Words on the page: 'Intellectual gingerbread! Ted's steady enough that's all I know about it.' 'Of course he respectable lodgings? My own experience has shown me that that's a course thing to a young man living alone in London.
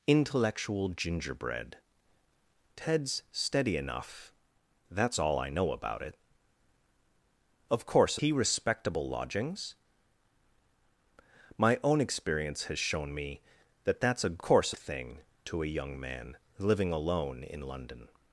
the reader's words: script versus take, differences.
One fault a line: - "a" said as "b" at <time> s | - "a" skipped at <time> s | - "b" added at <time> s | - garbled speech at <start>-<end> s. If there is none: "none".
none